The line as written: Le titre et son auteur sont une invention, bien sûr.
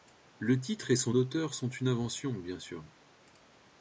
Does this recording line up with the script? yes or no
yes